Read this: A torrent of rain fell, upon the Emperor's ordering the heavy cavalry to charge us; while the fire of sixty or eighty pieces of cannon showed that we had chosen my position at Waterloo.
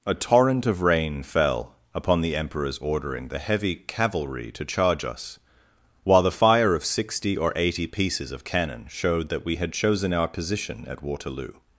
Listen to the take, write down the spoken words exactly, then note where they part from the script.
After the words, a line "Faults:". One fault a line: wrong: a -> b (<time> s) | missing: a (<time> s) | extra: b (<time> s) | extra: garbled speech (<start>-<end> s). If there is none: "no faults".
A torrent of rain fell, upon the Emperor's ordering the heavy cavalry to charge us; while the fire of sixty or eighty pieces of cannon showed that we had chosen our position at Waterloo.
Faults:
wrong: my -> our (10.1 s)